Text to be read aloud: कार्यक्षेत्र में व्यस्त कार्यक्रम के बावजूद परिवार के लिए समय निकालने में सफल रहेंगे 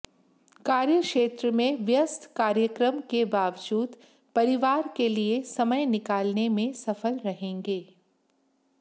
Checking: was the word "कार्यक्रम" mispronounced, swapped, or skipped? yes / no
no